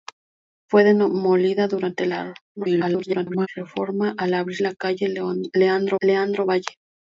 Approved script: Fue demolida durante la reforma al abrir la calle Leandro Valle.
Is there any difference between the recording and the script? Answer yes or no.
yes